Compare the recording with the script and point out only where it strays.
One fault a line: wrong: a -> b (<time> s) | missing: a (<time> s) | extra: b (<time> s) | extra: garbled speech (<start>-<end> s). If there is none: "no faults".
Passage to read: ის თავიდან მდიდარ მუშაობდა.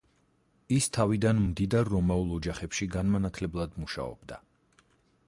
extra: რომაულ ოჯახებში განმანათლებლად (2.0 s)